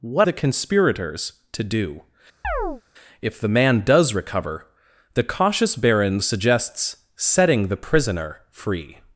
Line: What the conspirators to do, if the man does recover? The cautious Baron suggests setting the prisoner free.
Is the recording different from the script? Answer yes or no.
no